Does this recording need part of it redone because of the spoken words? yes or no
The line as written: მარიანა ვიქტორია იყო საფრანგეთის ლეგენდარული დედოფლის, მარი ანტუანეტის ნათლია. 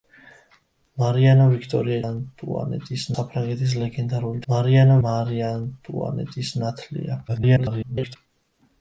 yes